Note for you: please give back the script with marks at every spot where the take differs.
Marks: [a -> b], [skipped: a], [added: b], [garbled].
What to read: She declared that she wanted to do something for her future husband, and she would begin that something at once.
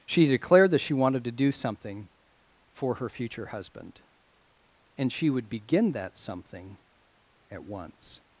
She declared that she wanted to do something for her future husband, and she would begin that something at once.